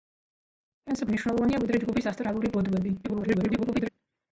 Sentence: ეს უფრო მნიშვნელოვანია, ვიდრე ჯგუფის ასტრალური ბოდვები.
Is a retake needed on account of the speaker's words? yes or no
yes